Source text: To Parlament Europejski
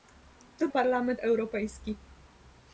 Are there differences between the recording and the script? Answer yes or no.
no